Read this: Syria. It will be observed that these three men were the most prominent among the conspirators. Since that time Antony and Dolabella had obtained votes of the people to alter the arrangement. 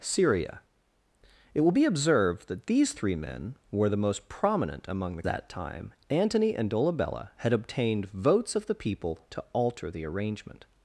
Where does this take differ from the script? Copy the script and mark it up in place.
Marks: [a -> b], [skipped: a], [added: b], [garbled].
Syria. It will be observed that these three men were the most prominent among the [skipped: conspirators. Since] that time Antony and Dolabella had obtained votes of the people to alter the arrangement.